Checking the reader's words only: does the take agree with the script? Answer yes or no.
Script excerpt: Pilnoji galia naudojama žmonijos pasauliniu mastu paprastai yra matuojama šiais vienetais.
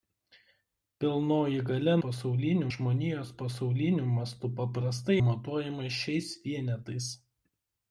no